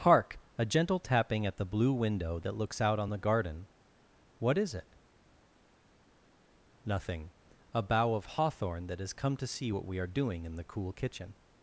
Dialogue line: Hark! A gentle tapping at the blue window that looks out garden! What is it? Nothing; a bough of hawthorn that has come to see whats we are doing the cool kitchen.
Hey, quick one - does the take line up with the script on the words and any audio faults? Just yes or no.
no